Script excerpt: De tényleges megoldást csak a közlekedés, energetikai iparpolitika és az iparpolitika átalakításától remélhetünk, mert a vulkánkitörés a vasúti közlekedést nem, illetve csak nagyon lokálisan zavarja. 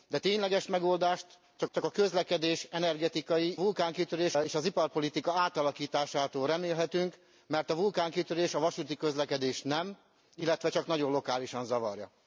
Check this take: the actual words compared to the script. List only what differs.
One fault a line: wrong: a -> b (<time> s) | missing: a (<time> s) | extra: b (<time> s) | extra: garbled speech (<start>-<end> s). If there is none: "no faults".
extra: csak (1.7 s)
wrong: iparpolitika -> vulkánkitörés (3.6 s)